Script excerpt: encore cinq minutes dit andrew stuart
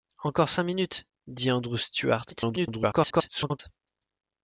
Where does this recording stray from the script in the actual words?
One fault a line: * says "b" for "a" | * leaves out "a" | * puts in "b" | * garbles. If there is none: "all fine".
* garbles